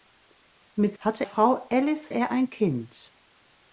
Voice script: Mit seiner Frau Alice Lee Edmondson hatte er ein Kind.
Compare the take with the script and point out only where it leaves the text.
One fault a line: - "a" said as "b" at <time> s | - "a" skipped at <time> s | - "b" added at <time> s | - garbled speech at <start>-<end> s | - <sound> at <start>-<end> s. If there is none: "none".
- "seiner" said as "hatte" at 1.0 s
- "Lee Edmondson hatte" skipped at 2.1 s